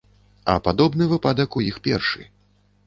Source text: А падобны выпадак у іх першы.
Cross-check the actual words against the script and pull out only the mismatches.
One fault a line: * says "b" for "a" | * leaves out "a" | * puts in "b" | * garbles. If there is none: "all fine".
all fine